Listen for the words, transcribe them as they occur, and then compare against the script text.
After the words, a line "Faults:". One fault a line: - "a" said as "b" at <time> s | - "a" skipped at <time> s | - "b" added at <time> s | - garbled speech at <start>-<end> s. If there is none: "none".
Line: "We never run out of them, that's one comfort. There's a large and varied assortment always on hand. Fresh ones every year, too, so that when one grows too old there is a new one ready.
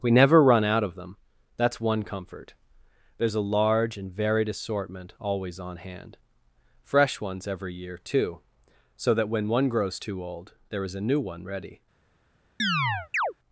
"We never run out of them, that's one comfort. There's a large and varied assortment always on hand. Fresh ones every year, too, so that when one grows too old there is a new one ready.
Faults:
none